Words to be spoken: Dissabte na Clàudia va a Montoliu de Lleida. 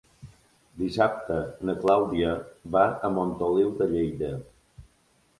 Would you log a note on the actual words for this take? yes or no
no